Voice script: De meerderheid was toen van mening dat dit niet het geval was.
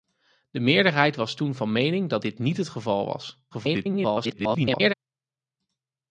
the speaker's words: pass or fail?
fail